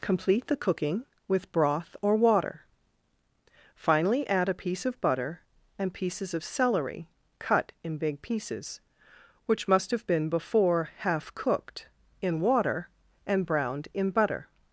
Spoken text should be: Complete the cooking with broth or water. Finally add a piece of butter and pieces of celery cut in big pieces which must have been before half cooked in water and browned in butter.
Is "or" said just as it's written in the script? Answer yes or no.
yes